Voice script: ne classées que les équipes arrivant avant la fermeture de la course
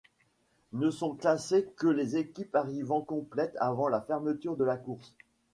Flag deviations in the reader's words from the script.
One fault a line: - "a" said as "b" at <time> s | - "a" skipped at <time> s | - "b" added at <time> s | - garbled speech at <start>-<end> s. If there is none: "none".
- "sont" added at 0.9 s
- "complètes" added at 3.0 s